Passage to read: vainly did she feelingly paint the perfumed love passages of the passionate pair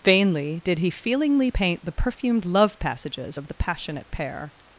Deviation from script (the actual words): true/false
true